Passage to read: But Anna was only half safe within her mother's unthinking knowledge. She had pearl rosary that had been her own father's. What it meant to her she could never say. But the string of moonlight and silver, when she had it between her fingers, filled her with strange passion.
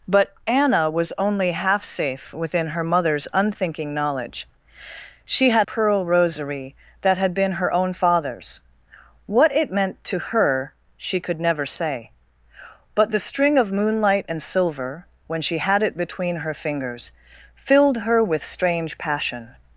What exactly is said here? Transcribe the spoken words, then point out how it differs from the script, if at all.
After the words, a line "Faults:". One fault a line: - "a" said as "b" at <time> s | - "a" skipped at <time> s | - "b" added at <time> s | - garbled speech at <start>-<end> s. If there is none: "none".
But Anna was only half safe within her mother's unthinking knowledge. She had pearl rosary that had been her own father's. What it meant to her she could never say. But the string of moonlight and silver, when she had it between her fingers, filled her with strange passion.
Faults:
none